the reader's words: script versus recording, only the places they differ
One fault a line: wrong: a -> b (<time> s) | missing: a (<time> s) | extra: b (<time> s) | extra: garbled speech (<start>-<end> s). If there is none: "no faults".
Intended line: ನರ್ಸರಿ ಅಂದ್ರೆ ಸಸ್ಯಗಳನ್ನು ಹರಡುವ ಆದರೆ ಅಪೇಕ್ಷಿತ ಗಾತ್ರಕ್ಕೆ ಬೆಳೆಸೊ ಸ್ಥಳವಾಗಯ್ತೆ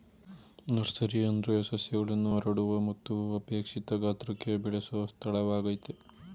wrong: ಆದರೆ -> ಮತ್ತು (2.9 s)